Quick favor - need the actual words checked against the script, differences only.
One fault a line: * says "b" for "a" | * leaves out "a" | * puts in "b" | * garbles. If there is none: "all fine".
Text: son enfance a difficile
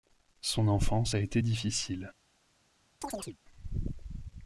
* puts in "été"